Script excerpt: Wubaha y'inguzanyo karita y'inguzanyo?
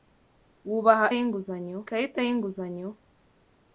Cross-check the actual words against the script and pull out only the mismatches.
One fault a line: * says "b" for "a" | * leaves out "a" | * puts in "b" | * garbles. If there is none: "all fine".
all fine